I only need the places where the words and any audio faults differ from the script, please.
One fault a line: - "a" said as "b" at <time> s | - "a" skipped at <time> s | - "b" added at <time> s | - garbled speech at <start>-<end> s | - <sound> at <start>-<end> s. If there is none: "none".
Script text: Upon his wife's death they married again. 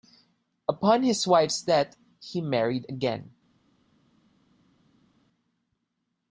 - "they" said as "he" at 2.2 s